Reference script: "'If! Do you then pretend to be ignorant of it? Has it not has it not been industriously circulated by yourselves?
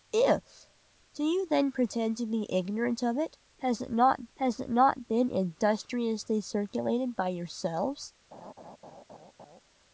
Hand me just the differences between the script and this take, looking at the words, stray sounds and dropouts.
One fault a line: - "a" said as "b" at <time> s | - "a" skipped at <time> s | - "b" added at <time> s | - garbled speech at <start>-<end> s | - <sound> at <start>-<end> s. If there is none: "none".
- laugh at 8.3-9.6 s